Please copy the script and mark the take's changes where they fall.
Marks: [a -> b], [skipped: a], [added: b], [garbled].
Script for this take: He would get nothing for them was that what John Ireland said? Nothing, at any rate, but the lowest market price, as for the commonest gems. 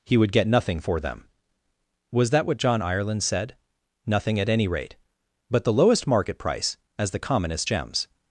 He would get nothing for them was that what John Ireland said? Nothing, at any rate, but the lowest market price, as [skipped: for] the commonest gems.